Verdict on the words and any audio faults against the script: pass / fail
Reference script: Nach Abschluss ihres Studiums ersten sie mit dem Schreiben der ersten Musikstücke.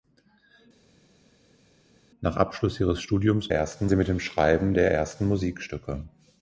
pass